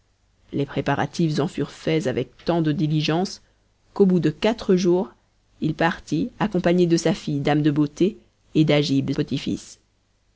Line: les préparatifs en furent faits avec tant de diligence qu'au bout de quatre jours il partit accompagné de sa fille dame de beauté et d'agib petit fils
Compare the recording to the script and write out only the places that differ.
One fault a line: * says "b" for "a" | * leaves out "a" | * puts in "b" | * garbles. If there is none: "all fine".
all fine